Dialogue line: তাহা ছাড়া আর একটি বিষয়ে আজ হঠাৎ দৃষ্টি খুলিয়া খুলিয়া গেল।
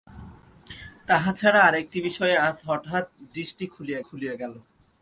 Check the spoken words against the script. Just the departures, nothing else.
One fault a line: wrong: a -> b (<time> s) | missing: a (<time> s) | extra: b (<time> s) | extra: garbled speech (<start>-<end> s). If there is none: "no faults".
no faults